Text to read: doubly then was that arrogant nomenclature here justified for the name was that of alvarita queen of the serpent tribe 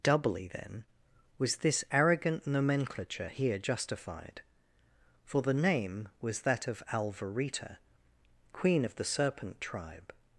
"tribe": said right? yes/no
yes